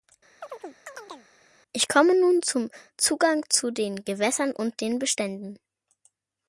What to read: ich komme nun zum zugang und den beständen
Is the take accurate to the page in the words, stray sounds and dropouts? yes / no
no